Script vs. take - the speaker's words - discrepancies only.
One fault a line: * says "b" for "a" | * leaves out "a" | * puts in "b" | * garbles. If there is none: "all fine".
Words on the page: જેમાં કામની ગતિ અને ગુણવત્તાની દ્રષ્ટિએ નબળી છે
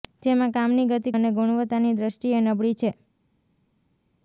all fine